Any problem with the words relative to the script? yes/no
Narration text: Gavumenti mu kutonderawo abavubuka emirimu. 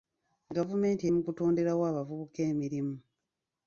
no